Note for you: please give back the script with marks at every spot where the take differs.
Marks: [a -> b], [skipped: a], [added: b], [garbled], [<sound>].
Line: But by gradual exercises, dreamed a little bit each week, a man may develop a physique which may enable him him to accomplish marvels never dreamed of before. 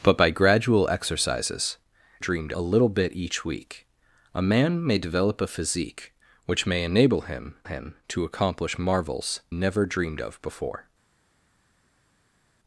But by gradual exercises, dreamed a little bit each week, a man may develop a physique which may enable him him to accomplish marvels never dreamed of before.